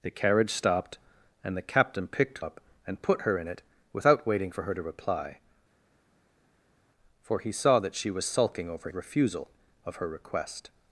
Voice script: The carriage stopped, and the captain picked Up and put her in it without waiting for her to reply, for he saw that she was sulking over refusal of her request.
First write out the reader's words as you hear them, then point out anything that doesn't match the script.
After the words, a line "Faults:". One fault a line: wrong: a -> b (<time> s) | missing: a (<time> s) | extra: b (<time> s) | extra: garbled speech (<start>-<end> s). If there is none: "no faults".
The carriage stopped, and the captain picked Up and put her in it without waiting for her to reply, for he saw that she was sulking over refusal of her request.
Faults:
no faults